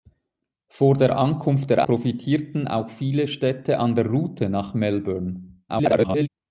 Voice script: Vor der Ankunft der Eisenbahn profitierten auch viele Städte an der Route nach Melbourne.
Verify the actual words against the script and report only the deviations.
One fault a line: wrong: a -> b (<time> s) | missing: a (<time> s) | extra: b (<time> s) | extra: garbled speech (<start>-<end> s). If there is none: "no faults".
missing: Eisenbahn (1.9 s)
extra: garbled speech (5.7-6.3 s)